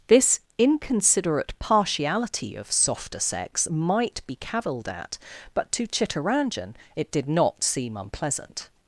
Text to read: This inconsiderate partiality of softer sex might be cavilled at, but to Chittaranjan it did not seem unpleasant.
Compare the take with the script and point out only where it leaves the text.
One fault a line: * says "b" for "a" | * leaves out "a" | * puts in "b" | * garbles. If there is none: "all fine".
all fine